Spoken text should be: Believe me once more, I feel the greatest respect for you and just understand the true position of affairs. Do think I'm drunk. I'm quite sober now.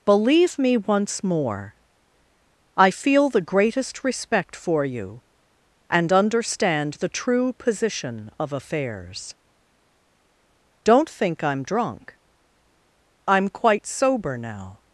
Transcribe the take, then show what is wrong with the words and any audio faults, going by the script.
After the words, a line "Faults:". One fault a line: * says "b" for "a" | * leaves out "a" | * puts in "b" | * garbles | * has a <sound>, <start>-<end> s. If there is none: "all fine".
Believe me once more, I feel the greatest respect for you and understand the true position of affairs. Don't think I'm drunk. I'm quite sober now.
Faults:
* leaves out "just"
* says "Don't" for "Do"